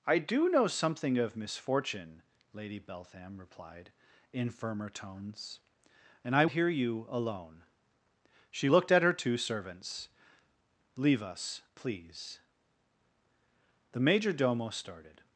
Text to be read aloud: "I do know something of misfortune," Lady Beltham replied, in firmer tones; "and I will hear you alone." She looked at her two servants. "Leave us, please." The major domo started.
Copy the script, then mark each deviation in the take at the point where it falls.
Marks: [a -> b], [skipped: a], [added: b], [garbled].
"I do know something of misfortune," Lady Beltham replied, in firmer tones; "and I [skipped: will] hear you alone." She looked at her two servants. "Leave us, please." The major domo started.